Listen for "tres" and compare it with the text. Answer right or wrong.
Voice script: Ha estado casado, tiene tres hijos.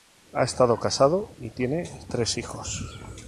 right